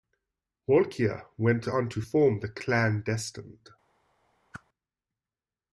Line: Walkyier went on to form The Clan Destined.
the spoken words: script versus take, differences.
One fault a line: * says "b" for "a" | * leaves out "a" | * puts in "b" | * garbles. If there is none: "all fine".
all fine